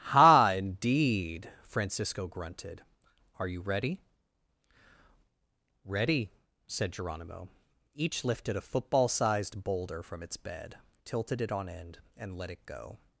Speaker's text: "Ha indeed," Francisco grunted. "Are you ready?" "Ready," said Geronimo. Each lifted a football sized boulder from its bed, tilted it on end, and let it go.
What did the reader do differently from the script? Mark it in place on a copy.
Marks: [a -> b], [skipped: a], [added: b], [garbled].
"Ha indeed," Francisco grunted. "Are you ready?" "Ready," said Geronimo. Each lifted a football sized boulder from its bed, tilted it on end, and let it go.